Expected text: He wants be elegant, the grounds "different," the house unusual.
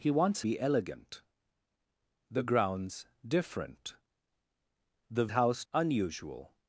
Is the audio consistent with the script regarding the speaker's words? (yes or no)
yes